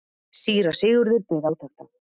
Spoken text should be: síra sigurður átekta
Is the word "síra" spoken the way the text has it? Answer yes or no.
yes